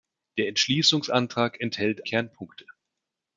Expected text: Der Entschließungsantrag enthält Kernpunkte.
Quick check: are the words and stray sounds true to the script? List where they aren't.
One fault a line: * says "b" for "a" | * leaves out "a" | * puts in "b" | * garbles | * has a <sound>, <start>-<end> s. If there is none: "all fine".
all fine